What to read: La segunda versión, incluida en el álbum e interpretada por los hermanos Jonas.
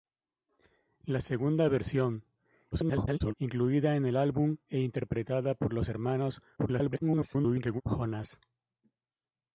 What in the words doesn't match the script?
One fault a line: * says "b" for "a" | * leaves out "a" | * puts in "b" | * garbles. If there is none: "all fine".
* garbles
* garbles